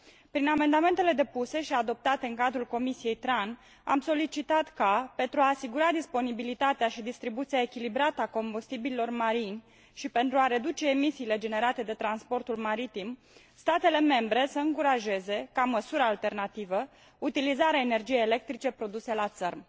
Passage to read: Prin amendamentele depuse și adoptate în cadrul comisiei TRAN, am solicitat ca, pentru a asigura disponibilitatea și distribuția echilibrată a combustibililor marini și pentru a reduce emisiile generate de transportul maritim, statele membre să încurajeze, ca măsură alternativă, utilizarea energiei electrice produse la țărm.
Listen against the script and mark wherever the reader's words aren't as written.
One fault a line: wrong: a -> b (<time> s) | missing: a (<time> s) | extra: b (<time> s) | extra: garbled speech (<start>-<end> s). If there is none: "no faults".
no faults